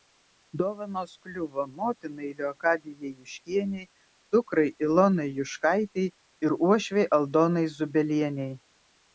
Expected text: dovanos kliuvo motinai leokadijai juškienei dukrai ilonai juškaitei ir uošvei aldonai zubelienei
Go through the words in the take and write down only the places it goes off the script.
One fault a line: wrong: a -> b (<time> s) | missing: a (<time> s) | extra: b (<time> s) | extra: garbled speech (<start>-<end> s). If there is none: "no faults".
no faults